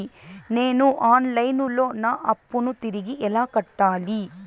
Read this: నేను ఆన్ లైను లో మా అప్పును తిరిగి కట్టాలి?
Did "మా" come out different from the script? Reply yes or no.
yes